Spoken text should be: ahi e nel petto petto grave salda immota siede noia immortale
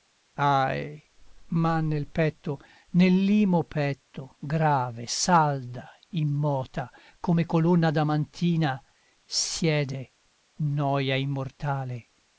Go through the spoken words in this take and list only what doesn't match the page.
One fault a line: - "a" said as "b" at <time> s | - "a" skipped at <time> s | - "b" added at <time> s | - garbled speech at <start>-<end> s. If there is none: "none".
- "e" said as "ma" at 1.5 s
- "nell'imo" added at 2.9 s
- "come colonna adamantina" added at 7.2 s